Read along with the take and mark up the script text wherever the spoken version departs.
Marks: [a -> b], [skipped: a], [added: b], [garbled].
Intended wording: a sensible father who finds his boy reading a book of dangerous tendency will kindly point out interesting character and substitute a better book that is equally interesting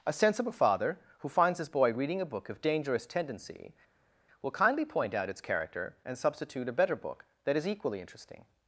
a sensible father who finds his boy reading a book of dangerous tendency will kindly point out [interesting -> its] character and substitute a better book that is equally interesting